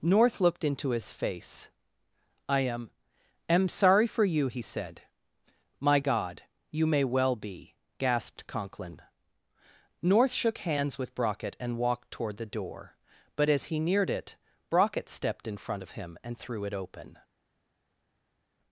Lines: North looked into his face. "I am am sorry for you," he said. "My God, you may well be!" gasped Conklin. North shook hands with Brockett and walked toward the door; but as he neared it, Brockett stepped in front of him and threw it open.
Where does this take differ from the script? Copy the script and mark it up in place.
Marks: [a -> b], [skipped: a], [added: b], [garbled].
North looked into his face. "I am am sorry for you," he said. "My God, you may well be!" gasped Conklin. North shook hands with Brockett and walked toward the door; but as he neared it, Brockett stepped in front of him and threw it open.